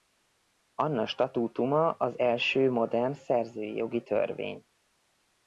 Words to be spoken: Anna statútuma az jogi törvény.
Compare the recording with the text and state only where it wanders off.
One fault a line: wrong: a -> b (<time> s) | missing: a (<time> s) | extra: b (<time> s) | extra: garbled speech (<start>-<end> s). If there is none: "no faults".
extra: első modern szerzői (2.2 s)